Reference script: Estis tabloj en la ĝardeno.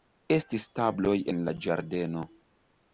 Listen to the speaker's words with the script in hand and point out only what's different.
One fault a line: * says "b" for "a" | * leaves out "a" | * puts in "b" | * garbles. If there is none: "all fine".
all fine